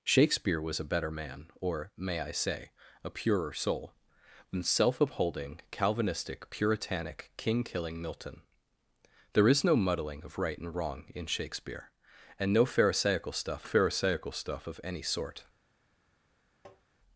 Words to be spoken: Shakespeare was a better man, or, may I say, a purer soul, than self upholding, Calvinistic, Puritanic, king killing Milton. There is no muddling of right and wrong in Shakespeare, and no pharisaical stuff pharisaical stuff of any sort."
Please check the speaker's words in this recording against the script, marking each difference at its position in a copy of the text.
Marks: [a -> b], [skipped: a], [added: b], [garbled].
Shakespeare was a better man, or, may I say, a purer soul, than self upholding, Calvinistic, Puritanic, king killing Milton. There is no muddling of right and wrong in Shakespeare, and no pharisaical stuff pharisaical stuff of any sort."